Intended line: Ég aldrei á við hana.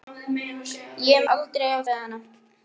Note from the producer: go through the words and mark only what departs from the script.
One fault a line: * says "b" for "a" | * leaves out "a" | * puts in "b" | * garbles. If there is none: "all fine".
all fine